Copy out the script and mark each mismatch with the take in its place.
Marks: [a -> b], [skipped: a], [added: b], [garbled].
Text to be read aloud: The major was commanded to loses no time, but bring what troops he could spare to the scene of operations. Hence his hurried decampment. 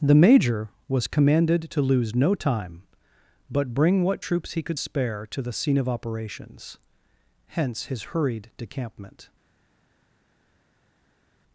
The major was commanded to [loses -> lose] no time, but bring what troops he could spare to the scene of operations. Hence his hurried decampment.